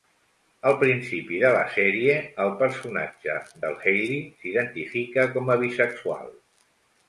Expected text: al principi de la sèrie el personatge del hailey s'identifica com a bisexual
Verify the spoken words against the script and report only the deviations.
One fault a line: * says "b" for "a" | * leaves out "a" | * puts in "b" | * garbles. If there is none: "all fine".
all fine